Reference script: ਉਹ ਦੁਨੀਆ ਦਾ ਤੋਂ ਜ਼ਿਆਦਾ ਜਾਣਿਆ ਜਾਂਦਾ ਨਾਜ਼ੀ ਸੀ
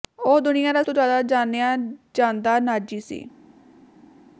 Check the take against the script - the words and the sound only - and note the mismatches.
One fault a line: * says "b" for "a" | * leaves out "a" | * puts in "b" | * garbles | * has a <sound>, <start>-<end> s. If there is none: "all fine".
all fine